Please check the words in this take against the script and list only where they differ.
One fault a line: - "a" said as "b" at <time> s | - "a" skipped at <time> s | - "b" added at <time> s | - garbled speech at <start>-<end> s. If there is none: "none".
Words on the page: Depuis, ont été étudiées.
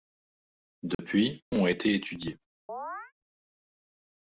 none